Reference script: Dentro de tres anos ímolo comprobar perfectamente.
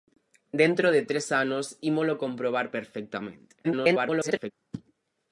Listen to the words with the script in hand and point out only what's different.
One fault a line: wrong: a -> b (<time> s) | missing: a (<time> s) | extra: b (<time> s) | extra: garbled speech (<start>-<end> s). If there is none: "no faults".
extra: garbled speech (3.6-4.5 s)